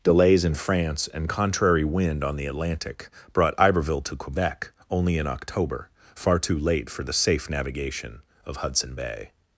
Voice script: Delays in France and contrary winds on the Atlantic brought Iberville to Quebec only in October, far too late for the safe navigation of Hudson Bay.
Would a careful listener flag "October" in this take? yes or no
no